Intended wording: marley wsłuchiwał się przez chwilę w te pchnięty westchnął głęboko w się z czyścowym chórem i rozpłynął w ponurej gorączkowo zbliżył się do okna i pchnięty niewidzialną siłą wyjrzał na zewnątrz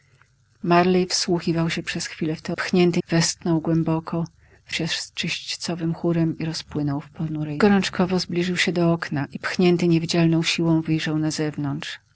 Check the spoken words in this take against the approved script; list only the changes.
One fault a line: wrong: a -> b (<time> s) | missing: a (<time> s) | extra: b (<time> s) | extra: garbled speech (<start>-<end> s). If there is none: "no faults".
no faults